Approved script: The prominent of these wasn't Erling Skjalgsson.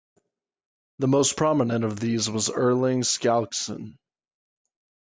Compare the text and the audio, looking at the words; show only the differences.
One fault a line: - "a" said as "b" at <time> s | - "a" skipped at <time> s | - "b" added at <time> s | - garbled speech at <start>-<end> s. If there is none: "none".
- "most" added at 1.1 s
- "wasn't" said as "was" at 2.3 s